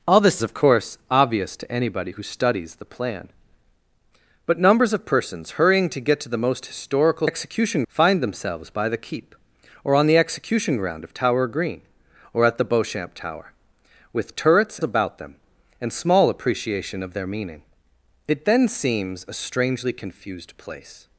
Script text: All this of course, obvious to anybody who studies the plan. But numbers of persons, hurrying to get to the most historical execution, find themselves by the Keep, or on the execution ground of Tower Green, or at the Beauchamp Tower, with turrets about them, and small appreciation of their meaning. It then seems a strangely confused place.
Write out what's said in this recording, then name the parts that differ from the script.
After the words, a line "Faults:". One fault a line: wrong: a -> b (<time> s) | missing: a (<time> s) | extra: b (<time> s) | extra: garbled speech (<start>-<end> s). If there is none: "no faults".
All this of course, obvious to anybody who studies the plan. But numbers of persons, hurrying to get to the most historical execution, find themselves by the Keep, or on the execution ground of Tower Green, or at the Beauchamp Tower, with turrets about them, and small appreciation of their meaning. It then seems a strangely confused place.
Faults:
no faults